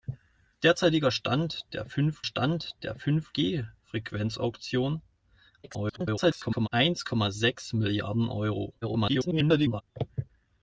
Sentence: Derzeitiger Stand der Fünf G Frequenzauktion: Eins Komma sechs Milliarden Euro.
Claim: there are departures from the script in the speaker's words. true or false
true